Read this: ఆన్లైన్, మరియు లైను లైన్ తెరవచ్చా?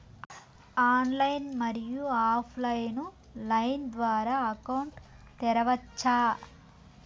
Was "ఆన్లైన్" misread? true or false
false